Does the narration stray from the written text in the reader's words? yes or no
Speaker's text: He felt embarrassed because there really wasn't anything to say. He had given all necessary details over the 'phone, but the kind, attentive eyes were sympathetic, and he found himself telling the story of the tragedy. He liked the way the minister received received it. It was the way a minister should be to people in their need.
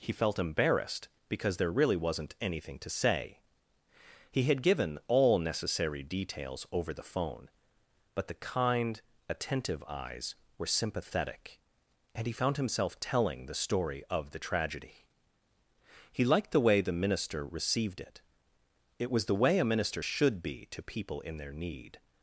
yes